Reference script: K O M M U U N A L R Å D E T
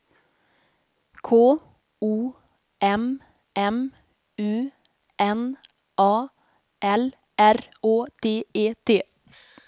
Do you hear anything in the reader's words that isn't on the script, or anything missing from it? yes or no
yes